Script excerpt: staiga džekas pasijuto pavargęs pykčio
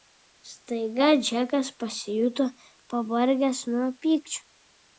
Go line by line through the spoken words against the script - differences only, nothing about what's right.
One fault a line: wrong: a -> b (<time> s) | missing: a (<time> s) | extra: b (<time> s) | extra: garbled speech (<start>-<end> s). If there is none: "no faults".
extra: nuo (3.7 s)